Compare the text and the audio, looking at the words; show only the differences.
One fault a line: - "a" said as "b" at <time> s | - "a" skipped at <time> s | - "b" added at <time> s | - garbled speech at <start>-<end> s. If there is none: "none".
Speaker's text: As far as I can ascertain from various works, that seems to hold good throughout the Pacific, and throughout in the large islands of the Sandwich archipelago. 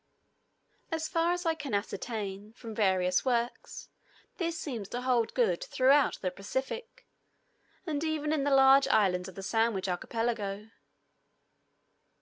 - "that" said as "this" at 4.4 s
- "throughout" said as "even" at 8.0 s